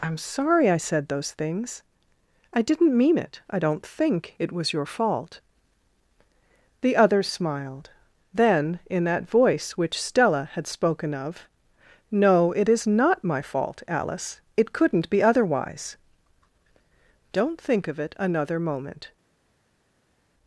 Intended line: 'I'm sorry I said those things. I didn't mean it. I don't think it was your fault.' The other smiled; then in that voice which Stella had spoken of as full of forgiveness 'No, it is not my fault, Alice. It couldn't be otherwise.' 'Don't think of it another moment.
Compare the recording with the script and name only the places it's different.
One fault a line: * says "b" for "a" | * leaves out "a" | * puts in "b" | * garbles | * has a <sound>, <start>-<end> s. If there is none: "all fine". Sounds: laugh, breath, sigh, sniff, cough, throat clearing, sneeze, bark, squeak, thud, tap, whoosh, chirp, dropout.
* leaves out "as full of forgiveness"